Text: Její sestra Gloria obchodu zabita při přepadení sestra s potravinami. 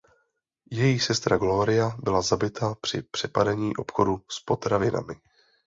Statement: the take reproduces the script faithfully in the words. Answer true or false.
false